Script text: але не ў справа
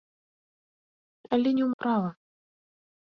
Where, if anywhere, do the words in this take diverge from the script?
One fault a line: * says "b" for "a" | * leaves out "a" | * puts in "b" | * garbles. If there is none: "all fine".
all fine